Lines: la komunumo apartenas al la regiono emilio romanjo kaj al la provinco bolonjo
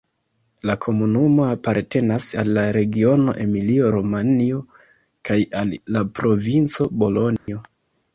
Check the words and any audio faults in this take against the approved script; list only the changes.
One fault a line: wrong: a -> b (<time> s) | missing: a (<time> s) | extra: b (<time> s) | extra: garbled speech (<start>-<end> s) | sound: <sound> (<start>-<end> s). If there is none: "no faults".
sound: dropout (7.4-7.5 s)